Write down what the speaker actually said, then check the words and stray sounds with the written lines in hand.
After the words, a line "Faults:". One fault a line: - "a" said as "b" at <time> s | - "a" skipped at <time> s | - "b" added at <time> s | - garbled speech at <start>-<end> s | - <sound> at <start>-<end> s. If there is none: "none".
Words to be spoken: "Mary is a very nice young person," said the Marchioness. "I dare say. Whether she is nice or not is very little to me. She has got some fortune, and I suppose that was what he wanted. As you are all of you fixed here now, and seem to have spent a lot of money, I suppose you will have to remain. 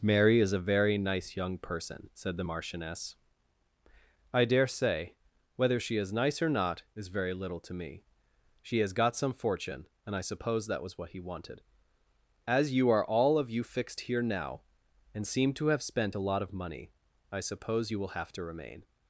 "Mary is a very nice young person," said the Marchioness. "I dare say. Whether she is nice or not is very little to me. She has got some fortune, and I suppose that was what he wanted. As you are all of you fixed here now, and seem to have spent a lot of money, I suppose you will have to remain.
Faults:
none